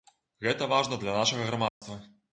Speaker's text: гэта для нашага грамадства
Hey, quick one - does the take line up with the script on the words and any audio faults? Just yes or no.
no